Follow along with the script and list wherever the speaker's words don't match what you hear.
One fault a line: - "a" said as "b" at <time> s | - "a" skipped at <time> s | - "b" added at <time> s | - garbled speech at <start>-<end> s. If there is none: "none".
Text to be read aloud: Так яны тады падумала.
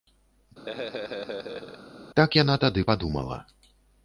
- "яны" said as "яна" at 2.4 s